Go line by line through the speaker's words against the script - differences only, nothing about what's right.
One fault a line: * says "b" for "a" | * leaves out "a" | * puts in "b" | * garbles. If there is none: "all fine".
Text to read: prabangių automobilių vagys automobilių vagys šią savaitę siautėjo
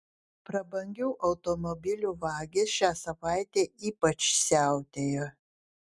* leaves out "automobilių vagys"
* puts in "ypač"